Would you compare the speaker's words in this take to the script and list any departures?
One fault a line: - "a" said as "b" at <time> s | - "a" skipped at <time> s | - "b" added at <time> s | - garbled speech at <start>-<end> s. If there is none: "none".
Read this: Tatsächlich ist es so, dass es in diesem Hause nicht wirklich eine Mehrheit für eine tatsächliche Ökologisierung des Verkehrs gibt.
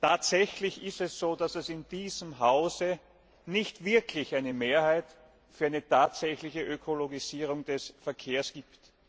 none